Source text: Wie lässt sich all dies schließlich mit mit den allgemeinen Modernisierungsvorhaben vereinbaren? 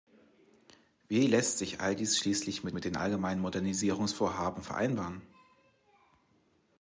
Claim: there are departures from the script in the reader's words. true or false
false